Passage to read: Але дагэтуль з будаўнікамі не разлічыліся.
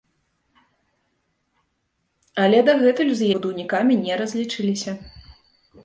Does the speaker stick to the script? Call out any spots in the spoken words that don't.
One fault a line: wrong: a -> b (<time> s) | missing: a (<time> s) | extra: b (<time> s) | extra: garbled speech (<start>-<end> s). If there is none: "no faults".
no faults